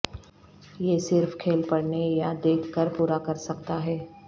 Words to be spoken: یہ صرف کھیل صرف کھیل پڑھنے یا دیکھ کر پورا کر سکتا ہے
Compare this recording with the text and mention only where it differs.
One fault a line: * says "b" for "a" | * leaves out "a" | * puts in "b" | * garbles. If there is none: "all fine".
* leaves out "صرف کھیل"